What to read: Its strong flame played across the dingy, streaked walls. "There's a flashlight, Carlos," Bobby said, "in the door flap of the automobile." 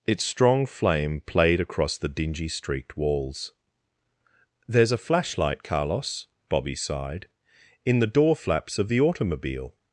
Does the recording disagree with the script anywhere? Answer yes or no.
yes